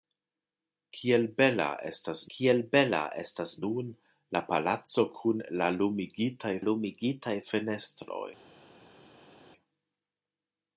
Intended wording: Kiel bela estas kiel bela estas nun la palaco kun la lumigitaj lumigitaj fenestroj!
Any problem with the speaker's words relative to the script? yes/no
no